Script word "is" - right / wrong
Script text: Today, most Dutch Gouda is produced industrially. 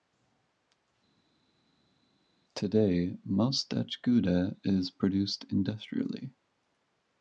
right